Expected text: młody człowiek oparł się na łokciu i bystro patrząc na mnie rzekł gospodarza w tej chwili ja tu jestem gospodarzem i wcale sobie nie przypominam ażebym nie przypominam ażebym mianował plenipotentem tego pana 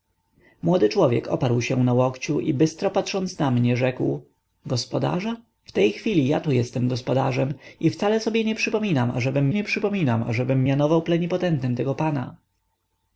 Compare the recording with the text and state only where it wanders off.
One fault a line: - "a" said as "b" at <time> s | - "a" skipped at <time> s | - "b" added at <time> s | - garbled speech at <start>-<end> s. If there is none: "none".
none